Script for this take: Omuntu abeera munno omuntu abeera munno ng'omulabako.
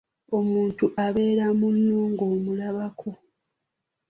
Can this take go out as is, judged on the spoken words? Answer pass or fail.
fail